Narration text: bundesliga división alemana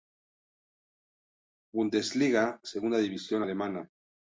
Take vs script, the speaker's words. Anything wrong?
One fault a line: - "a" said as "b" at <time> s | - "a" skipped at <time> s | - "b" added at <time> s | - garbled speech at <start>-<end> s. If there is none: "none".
- "segunda" added at 2.6 s